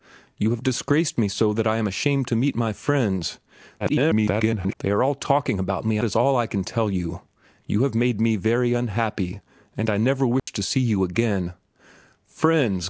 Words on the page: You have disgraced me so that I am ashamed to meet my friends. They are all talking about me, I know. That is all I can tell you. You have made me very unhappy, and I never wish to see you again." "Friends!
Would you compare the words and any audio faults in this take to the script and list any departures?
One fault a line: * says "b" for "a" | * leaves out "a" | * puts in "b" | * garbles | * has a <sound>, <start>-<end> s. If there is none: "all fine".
* garbles
* leaves out "I know That"
* has a dropout, 10.4-10.5 s